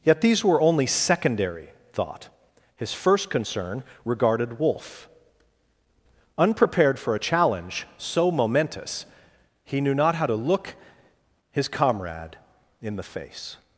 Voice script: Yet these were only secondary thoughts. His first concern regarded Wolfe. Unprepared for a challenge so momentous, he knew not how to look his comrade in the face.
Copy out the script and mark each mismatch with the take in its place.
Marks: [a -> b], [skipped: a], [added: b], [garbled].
Yet these were only secondary [thoughts. -> thought] His first concern regarded Wolfe. Unprepared for a challenge so momentous, he knew not how to look his comrade in the face.